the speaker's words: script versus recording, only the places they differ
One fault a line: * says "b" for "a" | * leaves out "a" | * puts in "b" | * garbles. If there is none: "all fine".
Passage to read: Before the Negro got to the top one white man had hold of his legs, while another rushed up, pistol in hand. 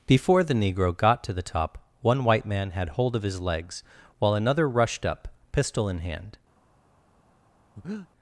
all fine